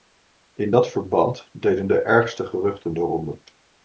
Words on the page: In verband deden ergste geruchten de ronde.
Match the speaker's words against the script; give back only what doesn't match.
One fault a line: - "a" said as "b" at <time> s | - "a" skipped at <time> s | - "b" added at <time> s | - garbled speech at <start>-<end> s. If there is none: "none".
- "dat" added at 0.7 s
- "de" added at 1.9 s